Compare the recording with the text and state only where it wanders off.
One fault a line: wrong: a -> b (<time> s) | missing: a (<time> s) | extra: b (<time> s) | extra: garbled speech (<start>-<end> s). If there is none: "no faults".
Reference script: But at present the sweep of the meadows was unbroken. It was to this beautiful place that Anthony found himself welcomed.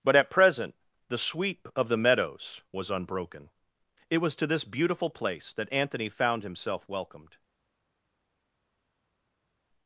no faults